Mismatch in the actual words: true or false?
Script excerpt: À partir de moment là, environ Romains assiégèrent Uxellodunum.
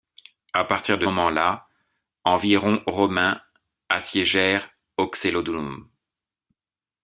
false